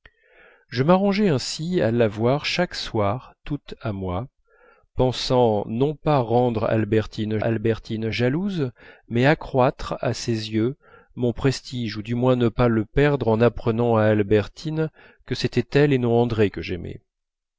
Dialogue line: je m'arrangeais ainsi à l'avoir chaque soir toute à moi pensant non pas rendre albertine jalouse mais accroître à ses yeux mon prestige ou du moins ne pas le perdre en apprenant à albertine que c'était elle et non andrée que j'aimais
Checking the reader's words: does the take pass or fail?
fail